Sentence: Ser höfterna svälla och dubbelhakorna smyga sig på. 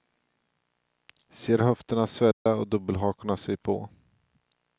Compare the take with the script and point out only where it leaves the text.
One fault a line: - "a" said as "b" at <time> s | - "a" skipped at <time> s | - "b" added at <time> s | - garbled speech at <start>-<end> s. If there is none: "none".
- "smyga" skipped at 3.4 s